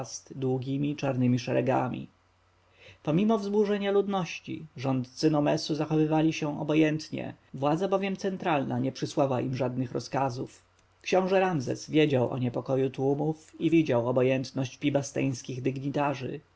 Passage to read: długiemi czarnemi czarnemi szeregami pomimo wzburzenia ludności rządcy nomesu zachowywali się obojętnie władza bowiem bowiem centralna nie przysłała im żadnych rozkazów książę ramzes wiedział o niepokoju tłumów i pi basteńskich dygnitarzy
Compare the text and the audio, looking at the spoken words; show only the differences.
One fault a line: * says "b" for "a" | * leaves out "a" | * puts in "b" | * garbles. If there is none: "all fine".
* leaves out "czarnemi"
* leaves out "bowiem"
* puts in "widział obojętność"